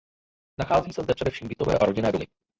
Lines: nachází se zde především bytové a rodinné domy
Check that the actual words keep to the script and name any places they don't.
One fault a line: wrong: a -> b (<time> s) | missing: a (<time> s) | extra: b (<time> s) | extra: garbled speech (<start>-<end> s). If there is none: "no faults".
no faults